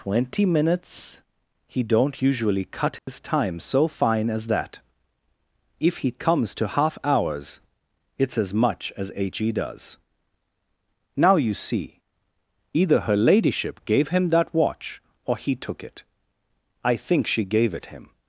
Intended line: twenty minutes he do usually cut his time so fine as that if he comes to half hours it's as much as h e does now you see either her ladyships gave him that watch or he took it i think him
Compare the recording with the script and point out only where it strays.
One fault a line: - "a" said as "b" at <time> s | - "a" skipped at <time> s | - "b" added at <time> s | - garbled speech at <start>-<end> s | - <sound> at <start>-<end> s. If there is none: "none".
- "do" said as "don't" at 1.8 s
- dropout at 3.0-3.1 s
- "ladyships" said as "ladyship" at 13.2 s
- "she gave it" added at 17.3 s